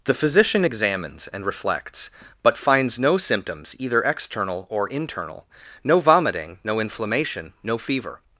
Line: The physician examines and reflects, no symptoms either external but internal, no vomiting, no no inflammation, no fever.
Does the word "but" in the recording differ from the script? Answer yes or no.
yes